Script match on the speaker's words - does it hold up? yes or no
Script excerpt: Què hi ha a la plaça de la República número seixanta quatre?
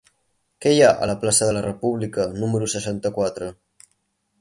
yes